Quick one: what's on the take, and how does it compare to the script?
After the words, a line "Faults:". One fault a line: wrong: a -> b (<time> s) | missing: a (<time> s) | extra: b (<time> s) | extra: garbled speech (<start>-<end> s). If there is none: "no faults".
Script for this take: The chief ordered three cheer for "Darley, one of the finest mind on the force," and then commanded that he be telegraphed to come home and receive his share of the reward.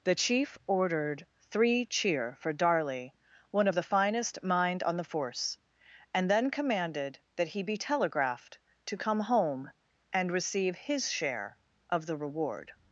The chief ordered three cheer for "Darley, one of the finest mind on the force," and then commanded that he be telegraphed to come home and receive his share of the reward.
Faults:
no faults